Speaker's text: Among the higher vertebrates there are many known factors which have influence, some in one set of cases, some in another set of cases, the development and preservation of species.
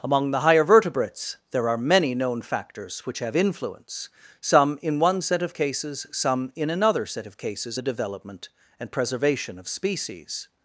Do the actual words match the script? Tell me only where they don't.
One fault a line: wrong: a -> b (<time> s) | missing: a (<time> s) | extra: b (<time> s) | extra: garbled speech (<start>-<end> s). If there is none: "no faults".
no faults